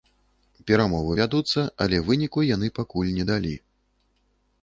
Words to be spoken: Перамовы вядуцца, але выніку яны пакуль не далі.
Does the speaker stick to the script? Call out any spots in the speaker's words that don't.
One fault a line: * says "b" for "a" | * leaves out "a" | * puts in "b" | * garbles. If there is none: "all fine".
all fine